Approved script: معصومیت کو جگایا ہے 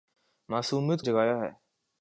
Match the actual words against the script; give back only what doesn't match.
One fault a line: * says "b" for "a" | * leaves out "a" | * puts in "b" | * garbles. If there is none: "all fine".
* leaves out "کو"